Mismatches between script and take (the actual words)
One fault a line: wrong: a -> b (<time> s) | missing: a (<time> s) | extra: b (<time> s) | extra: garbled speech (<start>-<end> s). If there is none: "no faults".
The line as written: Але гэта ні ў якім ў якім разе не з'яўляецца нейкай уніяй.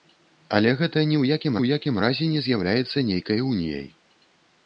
no faults